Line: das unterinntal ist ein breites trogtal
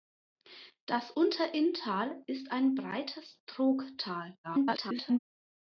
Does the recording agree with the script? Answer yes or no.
no